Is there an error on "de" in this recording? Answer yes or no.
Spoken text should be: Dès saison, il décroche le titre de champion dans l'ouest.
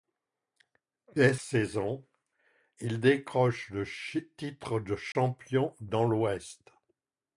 no